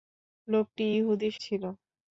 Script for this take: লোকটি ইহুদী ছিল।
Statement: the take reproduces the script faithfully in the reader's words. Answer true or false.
true